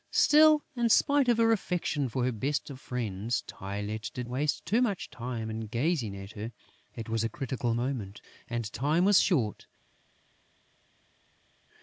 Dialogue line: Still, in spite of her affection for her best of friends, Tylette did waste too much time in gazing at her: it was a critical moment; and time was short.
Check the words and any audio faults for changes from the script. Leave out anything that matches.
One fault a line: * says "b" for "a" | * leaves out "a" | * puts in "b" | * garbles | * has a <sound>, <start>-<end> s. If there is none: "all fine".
all fine